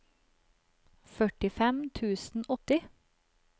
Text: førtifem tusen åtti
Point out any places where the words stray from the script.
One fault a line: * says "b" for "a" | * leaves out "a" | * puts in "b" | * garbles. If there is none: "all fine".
all fine